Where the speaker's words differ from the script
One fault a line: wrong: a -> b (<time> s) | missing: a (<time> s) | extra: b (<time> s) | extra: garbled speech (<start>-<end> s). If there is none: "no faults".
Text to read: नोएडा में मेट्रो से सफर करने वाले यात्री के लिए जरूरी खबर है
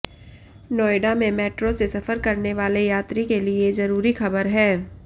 no faults